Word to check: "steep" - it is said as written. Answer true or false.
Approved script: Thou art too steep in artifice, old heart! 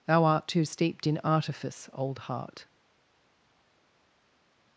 false